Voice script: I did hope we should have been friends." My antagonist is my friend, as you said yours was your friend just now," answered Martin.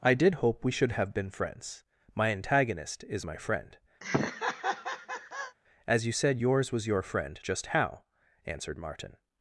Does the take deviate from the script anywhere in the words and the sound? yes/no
yes